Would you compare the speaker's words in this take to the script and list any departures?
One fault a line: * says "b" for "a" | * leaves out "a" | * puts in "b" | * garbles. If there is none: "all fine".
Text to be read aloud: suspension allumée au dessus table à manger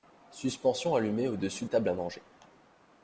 all fine